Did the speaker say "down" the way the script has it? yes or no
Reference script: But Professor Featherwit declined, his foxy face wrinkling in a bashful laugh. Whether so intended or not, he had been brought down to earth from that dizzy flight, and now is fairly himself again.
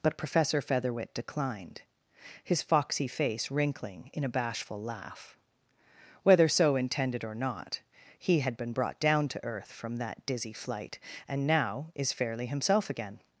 yes